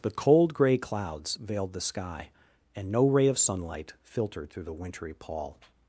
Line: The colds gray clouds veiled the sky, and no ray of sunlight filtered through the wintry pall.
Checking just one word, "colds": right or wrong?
wrong